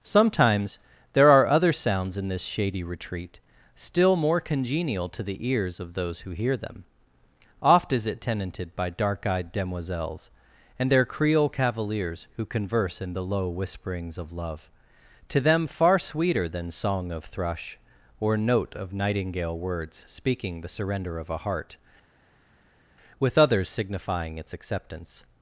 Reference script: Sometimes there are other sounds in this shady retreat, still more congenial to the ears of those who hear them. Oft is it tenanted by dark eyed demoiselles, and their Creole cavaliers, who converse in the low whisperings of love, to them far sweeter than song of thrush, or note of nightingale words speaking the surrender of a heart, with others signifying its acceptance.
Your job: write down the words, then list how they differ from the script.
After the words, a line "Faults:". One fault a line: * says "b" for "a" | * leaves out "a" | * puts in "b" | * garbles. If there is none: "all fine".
Sometimes there are other sounds in this shady retreat, still more congenial to the ears of those who hear them. Oft is it tenanted by dark eyed demoiselles, and their Creole cavaliers, who converse in the low whisperings of love, to them far sweeter than song of thrush, or note of nightingale words speaking the surrender of a heart, with others signifying its acceptance.
Faults:
all fine